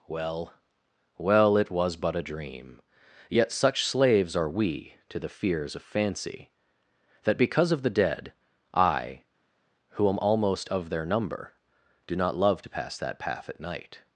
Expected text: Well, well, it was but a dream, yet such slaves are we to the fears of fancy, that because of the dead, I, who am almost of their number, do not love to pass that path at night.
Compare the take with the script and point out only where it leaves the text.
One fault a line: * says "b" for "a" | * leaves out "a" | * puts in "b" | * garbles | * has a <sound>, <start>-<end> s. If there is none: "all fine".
all fine